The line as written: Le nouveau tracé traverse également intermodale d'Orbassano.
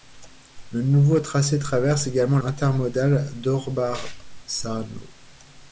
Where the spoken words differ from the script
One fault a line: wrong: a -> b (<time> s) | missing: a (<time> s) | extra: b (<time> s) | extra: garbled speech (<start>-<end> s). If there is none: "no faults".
no faults